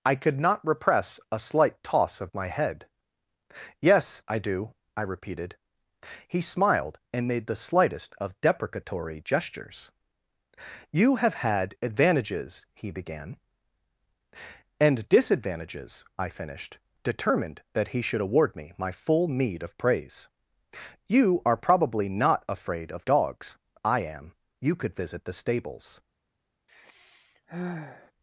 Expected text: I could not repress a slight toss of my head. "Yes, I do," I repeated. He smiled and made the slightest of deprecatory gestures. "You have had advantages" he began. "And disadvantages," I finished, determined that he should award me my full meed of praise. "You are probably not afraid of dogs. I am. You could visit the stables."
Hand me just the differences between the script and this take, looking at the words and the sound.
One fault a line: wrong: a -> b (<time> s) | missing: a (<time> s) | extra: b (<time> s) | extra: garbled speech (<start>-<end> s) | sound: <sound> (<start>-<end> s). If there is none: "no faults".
sound: sigh (26.7-28.1 s)